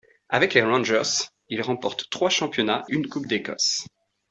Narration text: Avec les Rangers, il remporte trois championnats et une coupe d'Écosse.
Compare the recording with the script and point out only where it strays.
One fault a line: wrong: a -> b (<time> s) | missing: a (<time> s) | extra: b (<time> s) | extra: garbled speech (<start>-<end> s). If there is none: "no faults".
missing: et (2.9 s)